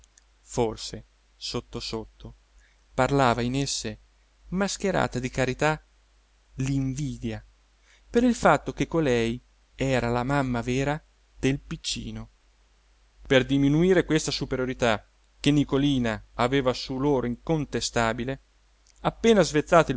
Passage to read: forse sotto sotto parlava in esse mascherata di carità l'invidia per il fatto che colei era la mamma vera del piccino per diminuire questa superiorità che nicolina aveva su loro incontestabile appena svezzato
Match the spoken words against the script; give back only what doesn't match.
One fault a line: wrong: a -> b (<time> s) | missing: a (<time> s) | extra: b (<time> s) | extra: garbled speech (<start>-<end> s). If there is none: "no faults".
no faults